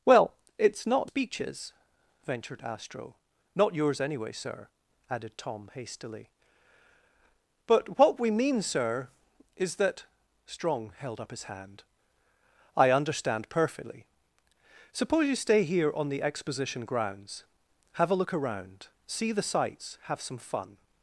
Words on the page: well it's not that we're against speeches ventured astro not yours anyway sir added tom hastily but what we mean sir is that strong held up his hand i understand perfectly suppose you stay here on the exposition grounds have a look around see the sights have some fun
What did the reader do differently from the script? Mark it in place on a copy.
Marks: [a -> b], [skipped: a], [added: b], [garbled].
well it's not [skipped: that we're against] speeches ventured astro not yours anyway sir added tom hastily but what we mean sir is that strong held up his hand i understand perfectly suppose you stay here on the exposition grounds have a look around see the sights have some fun